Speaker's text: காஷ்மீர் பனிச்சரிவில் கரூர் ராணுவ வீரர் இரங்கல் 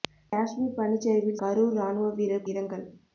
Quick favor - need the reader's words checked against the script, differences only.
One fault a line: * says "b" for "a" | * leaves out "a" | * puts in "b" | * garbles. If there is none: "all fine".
all fine